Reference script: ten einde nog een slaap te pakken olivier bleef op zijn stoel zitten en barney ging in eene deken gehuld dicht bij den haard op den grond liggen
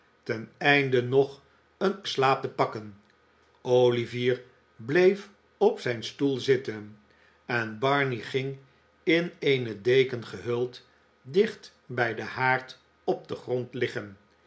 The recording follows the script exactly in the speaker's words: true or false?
true